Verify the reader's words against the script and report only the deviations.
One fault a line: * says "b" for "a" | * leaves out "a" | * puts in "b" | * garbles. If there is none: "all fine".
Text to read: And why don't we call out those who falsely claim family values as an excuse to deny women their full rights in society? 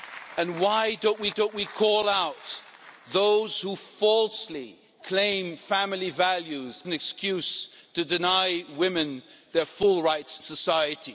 * puts in "don't we"
* leaves out "as"
* leaves out "in"